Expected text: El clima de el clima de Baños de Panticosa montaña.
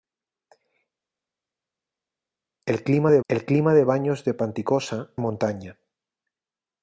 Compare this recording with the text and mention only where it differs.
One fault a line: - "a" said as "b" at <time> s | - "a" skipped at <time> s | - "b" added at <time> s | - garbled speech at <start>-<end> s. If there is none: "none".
none